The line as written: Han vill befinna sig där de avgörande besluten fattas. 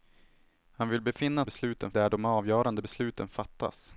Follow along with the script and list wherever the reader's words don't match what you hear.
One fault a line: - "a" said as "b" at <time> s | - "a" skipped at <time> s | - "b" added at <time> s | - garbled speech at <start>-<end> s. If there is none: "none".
- "sig" said as "besluten" at 1.4 s